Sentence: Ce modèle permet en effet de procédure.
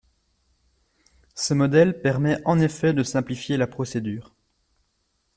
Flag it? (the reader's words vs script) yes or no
yes